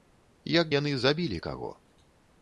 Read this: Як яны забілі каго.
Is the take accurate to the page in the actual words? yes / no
yes